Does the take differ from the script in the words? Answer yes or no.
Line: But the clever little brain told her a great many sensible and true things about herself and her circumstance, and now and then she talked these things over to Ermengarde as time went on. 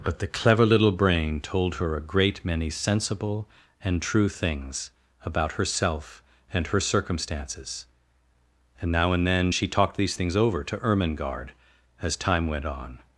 yes